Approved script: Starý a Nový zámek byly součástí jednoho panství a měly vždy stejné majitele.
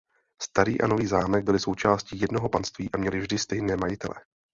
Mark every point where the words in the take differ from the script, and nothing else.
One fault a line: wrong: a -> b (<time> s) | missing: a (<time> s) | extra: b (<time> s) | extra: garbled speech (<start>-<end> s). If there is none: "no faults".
no faults